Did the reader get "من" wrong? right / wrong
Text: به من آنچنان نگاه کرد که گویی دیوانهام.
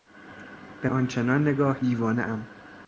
wrong